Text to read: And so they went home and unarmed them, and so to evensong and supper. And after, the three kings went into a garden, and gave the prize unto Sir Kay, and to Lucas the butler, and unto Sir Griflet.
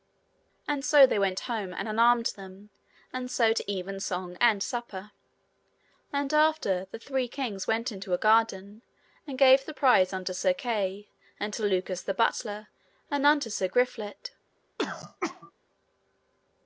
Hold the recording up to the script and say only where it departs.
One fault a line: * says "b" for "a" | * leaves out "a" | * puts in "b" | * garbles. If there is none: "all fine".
all fine